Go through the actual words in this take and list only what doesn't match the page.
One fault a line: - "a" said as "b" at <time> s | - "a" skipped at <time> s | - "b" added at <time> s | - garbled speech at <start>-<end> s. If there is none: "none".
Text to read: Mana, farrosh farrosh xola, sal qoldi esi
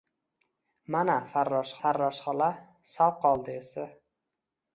none